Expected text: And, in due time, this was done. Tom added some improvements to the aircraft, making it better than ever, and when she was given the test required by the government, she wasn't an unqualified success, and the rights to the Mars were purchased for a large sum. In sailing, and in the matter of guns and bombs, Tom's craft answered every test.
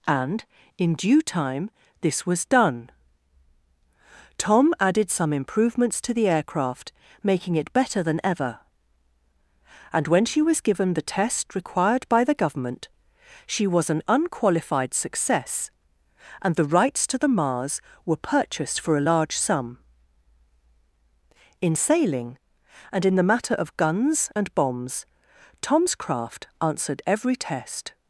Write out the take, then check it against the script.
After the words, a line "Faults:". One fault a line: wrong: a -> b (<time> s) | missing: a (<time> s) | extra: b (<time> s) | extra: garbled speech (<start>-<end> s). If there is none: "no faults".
And, in due time, this was done. Tom added some improvements to the aircraft, making it better than ever, and when she was given the test required by the government, she was an unqualified success, and the rights to the Mars were purchased for a large sum. In sailing, and in the matter of guns and bombs, Tom's craft answered every test.
Faults:
wrong: wasn't -> was (13.7 s)